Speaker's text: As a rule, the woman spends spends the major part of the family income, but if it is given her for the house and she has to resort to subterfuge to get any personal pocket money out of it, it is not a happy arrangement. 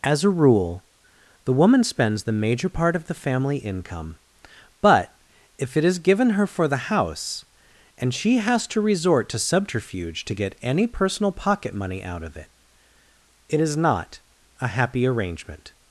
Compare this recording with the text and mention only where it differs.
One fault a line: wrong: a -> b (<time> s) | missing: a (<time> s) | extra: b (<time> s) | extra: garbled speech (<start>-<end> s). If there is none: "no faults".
missing: spends (2.2 s)